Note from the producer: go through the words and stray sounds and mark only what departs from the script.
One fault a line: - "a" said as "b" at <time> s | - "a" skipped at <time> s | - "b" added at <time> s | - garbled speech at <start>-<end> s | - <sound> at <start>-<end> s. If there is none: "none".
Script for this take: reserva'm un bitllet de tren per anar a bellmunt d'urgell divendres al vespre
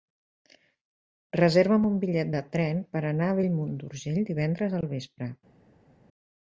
none